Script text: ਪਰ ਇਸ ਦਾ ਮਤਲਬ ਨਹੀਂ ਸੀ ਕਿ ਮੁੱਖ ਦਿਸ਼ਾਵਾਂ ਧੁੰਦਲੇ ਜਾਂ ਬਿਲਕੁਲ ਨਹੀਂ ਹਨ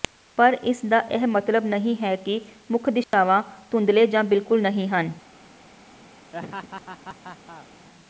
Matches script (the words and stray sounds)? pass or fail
fail